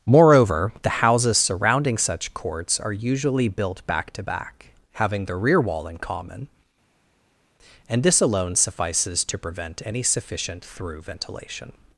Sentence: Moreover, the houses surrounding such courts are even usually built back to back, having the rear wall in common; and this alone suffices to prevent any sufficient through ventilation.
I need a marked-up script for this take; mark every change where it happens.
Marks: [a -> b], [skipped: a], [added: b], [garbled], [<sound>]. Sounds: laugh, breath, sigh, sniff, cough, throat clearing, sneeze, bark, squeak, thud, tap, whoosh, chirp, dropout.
Moreover, the houses surrounding such courts are [skipped: even] usually built back to back, having the rear wall in common; and this alone suffices to prevent any sufficient through ventilation.